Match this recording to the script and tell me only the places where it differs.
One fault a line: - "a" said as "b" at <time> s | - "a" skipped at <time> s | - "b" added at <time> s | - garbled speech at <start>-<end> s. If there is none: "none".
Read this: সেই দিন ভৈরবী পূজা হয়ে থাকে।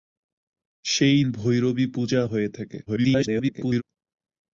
- "দিন" skipped at 1.2 s
- garbled speech at 2.9-3.8 s